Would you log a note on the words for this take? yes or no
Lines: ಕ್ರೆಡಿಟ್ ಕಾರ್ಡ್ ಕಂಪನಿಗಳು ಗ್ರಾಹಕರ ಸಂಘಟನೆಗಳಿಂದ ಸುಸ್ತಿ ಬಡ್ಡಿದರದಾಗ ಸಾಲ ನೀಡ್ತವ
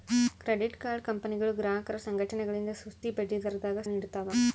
yes